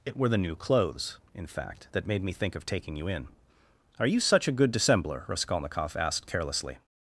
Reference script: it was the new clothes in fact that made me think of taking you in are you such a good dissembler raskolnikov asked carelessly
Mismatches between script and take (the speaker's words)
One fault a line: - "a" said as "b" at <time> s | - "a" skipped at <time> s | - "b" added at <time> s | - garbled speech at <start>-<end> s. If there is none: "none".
- "was" said as "were" at 0.2 s